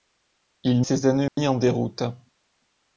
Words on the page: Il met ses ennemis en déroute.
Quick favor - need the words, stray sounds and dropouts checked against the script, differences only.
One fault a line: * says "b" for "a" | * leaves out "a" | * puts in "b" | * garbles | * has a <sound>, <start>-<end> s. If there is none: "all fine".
* leaves out "met"
* has a dropout, 1.3-1.4 s